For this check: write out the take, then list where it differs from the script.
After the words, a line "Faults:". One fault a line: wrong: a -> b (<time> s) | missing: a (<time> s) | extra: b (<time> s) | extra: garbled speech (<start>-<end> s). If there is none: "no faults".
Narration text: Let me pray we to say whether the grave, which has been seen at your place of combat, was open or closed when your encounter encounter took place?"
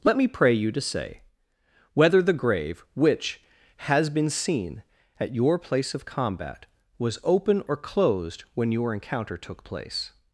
Let me pray you to say whether the grave, which has been seen at your place of combat, was open or closed when your encounter took place?"
Faults:
wrong: we -> you (0.5 s)
missing: encounter (9.4 s)